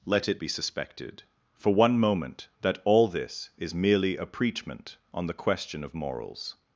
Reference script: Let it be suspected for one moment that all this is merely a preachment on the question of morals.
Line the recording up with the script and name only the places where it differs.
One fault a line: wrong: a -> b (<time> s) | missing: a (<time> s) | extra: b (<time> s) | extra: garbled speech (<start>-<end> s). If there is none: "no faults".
no faults